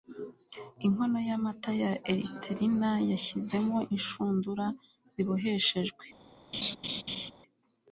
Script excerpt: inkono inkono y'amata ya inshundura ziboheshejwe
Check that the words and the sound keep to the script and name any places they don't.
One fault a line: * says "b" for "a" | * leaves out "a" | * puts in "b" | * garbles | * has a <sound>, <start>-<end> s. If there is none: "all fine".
* leaves out "inkono"
* puts in "erythrina yashyizemo"
* has a laugh, 6.5-7.3 s